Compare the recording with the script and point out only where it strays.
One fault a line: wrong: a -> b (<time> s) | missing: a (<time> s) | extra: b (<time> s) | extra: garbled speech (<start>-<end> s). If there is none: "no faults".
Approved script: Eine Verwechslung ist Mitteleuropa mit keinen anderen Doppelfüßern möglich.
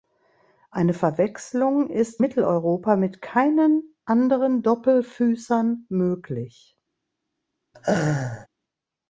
no faults